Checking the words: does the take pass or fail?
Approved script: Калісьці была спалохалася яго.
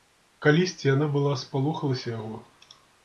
fail